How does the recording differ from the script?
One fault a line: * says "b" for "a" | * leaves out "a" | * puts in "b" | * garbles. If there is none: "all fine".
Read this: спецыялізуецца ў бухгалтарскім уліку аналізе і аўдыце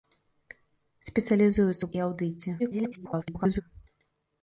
* leaves out "бухгалтарскім уліку аналізе"
* garbles